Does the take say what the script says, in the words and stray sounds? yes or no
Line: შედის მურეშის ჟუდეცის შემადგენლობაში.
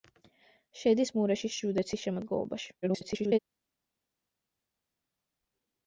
no